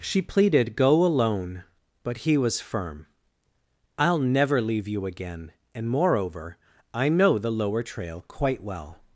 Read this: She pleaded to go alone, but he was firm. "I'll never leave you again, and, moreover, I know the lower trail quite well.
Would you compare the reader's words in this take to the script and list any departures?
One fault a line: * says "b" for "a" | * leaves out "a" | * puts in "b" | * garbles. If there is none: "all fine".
* leaves out "to"